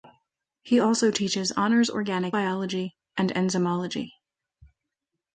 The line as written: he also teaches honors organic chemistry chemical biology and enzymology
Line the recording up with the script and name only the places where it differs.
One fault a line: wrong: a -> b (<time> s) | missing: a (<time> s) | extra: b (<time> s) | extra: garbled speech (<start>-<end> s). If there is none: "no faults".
missing: chemistry chemical (2.3 s)